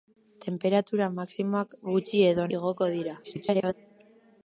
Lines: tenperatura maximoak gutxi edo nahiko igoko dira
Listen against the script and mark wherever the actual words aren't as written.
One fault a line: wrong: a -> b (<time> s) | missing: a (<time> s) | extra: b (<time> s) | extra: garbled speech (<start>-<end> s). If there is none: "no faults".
missing: nahiko (2.5 s)
extra: garbled speech (3.2-3.7 s)